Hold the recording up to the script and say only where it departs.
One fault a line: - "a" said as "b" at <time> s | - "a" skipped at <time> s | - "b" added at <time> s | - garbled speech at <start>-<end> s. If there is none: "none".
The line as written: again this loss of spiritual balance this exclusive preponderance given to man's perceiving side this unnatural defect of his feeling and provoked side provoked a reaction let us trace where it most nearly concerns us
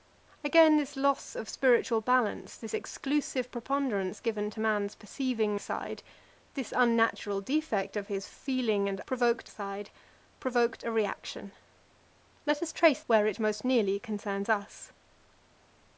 none